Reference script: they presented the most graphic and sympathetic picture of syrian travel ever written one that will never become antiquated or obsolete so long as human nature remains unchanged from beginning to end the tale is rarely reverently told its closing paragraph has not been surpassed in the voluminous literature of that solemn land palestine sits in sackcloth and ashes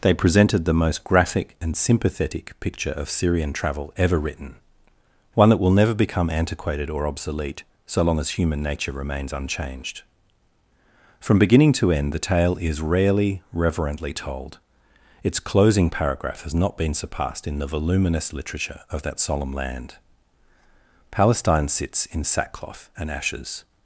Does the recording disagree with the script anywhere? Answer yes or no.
no